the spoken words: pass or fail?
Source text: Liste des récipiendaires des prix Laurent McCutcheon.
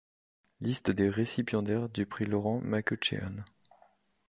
fail